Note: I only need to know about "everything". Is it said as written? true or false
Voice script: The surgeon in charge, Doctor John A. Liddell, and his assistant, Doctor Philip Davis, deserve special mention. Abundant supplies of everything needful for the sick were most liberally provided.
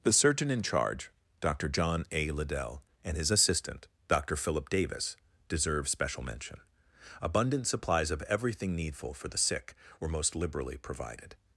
true